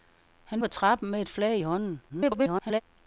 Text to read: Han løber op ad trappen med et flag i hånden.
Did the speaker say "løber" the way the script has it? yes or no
no